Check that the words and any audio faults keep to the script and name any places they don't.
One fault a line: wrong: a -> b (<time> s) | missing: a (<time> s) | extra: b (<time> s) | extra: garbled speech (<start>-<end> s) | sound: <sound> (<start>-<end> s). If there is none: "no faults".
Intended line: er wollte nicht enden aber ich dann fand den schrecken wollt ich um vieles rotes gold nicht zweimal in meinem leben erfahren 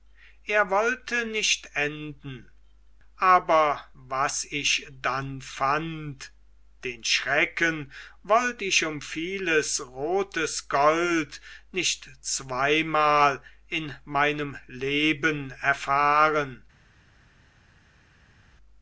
extra: was (3.9 s)